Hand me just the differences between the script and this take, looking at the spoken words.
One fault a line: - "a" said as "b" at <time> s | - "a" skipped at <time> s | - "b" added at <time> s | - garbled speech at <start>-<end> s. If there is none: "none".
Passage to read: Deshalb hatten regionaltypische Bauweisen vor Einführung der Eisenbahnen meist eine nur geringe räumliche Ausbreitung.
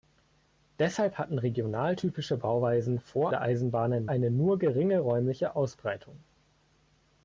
- "Einführung" skipped at 3.3 s
- "meist" skipped at 4.1 s